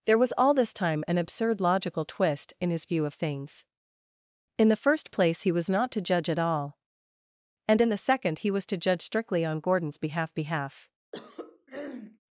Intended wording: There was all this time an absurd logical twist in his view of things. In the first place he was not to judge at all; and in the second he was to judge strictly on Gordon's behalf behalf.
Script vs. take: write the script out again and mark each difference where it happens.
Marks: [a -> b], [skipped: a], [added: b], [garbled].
There was all this time an absurd logical twist in his view of things. In the first place he was not to judge at all; and in the second he was to judge strictly on Gordon's behalf behalf.